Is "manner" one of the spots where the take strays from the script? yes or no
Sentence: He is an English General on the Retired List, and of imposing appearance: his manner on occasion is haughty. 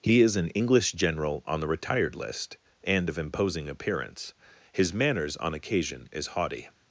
yes